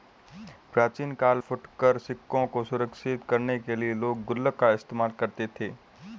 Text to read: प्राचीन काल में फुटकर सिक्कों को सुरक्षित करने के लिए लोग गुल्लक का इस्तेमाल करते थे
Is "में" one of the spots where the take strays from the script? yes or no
yes